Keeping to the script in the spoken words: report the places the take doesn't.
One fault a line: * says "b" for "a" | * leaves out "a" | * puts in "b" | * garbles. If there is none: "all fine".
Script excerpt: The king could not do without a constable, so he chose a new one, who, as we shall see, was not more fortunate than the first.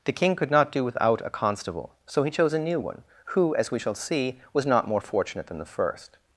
all fine